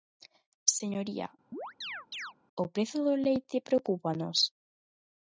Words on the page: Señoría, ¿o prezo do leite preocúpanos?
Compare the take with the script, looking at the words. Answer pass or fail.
pass